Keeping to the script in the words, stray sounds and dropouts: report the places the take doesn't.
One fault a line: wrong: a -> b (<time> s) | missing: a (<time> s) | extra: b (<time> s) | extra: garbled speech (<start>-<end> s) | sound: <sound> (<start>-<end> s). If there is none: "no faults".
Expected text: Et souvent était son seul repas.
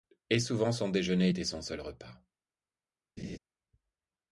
extra: son déjeuner (0.7 s)
sound: laugh (3.2-3.4 s)